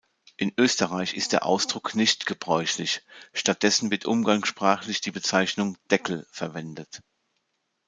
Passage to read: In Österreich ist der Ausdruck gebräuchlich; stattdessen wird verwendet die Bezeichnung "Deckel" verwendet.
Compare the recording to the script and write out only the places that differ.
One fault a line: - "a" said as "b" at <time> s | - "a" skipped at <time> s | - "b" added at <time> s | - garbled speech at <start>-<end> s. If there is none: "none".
- "nicht" added at 1.9 s
- "verwendet" said as "umgangssprachlich" at 4.0 s